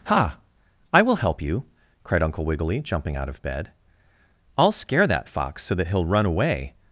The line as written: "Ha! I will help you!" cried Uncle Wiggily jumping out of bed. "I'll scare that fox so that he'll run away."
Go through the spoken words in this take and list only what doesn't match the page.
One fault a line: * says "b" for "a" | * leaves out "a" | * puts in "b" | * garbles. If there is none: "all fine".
all fine